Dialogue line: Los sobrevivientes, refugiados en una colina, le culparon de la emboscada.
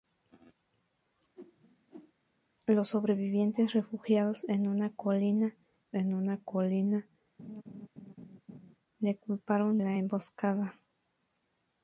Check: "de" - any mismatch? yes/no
yes